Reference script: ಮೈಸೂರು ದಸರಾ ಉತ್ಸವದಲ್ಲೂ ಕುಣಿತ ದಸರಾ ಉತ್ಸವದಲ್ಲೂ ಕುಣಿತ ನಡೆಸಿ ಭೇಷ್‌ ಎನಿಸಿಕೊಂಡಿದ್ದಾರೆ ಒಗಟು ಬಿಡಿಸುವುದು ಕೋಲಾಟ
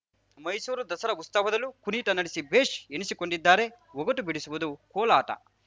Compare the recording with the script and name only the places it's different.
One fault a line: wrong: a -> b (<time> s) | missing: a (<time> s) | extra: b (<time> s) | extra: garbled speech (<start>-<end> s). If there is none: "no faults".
missing: ದಸರಾ ಉತ್ಸವದಲ್ಲೂ ಕುಣಿತ (2.1 s)